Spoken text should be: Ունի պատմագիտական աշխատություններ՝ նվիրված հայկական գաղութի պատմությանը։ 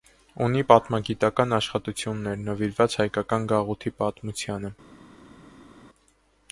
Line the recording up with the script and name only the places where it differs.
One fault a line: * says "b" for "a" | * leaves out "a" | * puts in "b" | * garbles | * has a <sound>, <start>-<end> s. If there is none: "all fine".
all fine